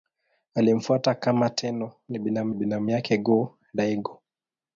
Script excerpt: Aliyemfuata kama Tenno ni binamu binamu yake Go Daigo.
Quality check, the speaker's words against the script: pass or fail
pass